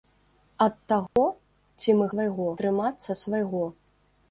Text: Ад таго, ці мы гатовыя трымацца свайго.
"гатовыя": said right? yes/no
no